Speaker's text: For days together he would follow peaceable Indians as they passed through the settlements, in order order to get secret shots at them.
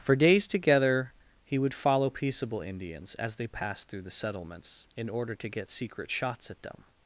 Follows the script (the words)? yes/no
no